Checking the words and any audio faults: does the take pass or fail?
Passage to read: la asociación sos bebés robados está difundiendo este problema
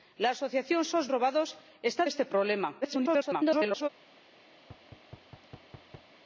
fail